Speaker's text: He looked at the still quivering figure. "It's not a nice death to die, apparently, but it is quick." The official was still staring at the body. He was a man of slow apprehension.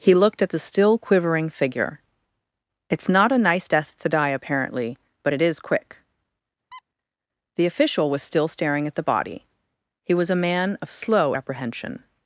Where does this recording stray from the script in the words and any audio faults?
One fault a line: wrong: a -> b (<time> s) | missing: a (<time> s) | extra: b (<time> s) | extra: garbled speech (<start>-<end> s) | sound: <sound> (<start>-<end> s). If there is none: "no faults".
sound: squeak (6.7-6.8 s)